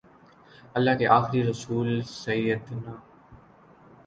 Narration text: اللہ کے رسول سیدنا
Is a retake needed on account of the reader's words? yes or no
yes